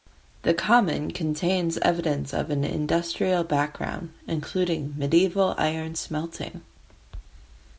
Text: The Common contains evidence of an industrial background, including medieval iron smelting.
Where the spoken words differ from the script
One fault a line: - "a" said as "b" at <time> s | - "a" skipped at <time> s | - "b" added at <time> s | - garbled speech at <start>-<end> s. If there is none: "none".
none